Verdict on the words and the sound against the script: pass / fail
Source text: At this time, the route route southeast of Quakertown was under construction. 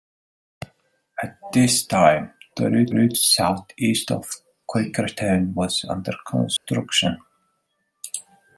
fail